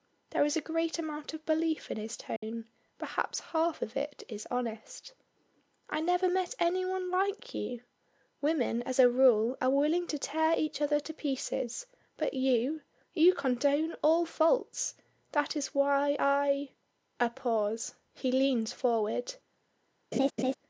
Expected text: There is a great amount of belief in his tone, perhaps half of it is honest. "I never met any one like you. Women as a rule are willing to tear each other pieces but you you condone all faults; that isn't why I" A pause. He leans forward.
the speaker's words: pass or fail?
fail